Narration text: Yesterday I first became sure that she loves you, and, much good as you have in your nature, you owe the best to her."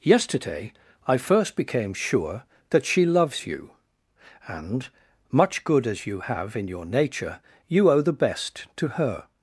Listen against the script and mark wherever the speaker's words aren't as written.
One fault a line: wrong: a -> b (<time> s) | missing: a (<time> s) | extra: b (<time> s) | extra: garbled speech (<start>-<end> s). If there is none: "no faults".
no faults